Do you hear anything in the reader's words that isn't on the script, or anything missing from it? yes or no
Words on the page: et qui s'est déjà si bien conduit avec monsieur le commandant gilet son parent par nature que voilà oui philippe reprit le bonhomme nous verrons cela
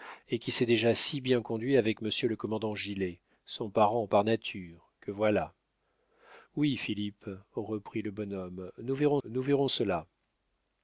yes